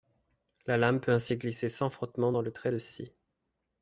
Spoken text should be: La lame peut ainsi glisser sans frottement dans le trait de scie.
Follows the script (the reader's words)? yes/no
yes